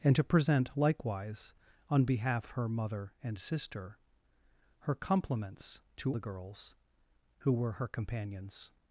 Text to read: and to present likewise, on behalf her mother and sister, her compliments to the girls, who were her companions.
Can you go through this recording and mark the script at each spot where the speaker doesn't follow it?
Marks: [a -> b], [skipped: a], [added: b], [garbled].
and to present likewise, on behalf her mother and sister, her compliments to the girls, who were her companions.